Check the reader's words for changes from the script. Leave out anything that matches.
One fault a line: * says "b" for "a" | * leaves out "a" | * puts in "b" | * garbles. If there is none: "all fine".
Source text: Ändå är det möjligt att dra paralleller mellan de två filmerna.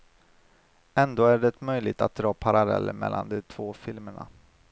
all fine